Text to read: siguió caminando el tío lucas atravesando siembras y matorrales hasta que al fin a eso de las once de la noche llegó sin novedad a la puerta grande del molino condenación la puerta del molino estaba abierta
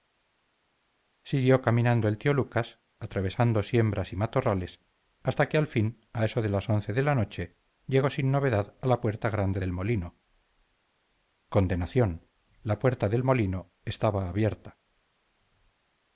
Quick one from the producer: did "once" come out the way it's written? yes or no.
yes